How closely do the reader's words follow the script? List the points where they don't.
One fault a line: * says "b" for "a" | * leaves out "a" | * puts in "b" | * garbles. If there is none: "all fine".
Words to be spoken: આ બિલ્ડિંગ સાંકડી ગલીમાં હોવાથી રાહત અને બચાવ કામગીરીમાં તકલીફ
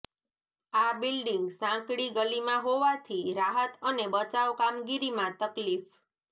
all fine